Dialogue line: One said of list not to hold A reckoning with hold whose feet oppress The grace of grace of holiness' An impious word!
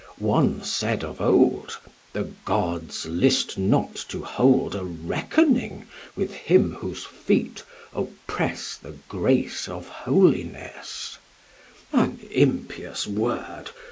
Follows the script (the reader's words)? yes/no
no